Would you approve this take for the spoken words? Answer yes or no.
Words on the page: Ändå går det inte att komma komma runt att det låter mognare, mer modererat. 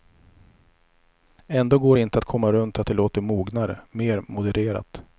no